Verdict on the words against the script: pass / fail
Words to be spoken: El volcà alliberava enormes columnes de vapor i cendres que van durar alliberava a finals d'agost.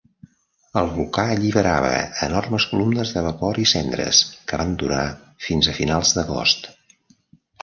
fail